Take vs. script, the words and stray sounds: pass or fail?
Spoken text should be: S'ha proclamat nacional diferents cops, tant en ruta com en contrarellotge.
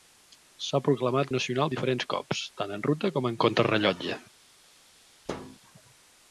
fail